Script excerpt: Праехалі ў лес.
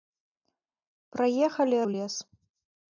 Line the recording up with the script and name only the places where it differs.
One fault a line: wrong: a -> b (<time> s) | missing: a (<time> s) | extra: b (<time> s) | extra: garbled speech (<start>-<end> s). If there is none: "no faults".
no faults